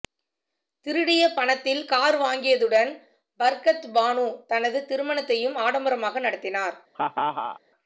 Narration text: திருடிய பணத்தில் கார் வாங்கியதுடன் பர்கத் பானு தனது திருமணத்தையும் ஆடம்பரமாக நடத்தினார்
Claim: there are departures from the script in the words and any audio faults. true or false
true